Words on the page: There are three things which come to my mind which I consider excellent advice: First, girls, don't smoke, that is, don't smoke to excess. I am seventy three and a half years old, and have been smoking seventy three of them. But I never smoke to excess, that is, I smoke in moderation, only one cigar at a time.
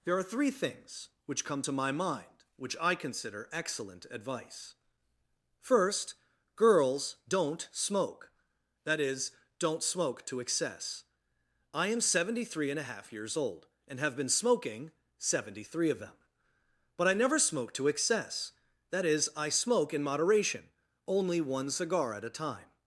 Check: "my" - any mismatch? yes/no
no